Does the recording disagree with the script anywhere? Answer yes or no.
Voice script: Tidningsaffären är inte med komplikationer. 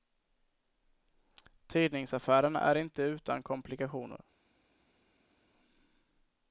yes